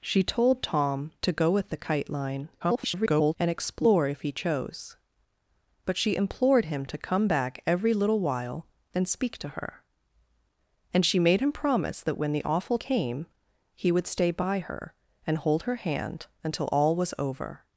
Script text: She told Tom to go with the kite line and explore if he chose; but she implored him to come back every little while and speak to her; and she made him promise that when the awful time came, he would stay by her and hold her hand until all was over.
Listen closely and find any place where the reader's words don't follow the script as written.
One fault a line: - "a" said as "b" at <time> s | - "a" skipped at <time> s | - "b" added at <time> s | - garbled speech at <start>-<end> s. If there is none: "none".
- garbled speech at 2.6-3.3 s
- "time" skipped at 12.8 s